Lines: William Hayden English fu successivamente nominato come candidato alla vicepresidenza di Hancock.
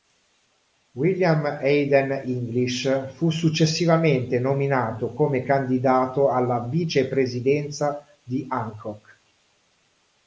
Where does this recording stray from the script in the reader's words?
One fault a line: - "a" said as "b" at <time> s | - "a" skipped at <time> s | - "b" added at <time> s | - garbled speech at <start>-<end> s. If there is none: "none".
none